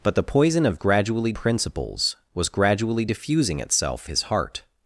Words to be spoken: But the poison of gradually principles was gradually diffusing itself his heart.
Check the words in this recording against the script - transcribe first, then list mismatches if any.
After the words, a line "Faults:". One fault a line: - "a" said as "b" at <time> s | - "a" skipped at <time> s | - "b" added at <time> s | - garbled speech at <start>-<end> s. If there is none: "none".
But the poison of gradually principles was gradually diffusing itself his heart.
Faults:
none